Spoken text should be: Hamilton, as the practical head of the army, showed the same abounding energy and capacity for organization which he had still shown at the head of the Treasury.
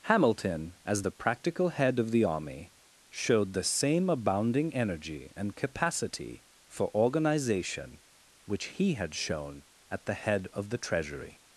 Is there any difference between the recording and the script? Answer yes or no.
yes